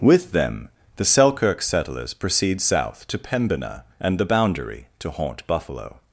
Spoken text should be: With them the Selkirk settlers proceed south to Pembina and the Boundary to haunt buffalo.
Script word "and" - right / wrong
right